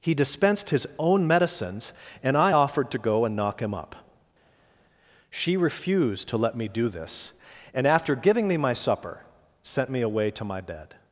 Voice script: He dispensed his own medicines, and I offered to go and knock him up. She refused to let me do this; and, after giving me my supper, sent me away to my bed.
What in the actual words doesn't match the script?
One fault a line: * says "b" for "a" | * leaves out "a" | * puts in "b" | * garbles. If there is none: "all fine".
all fine